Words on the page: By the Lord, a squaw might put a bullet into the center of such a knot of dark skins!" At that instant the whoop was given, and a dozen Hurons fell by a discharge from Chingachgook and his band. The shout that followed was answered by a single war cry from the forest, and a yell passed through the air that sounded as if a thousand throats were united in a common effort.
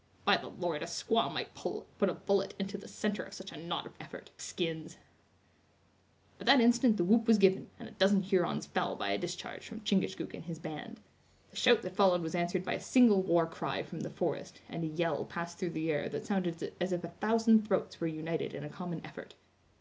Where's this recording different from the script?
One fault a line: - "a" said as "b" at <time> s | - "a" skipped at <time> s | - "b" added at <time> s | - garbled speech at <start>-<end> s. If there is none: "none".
- "dark" said as "effort" at 4.0 s